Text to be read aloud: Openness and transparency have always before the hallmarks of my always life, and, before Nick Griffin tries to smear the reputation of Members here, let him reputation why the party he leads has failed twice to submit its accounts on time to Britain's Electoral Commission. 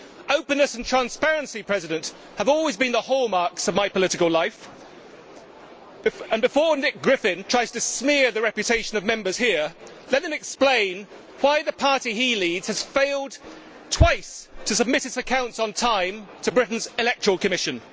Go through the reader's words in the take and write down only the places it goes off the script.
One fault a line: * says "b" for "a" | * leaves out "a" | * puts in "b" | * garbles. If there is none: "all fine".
* says "been" for "before"
* says "political" for "always"
* says "explain" for "reputation"